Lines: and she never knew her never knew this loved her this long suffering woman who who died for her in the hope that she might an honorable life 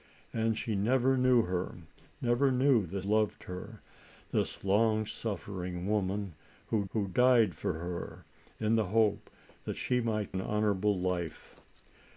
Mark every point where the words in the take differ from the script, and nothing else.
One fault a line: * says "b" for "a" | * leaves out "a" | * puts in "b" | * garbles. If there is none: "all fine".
all fine